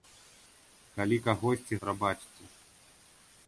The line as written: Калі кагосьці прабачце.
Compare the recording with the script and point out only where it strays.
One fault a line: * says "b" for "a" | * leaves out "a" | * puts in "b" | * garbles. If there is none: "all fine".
all fine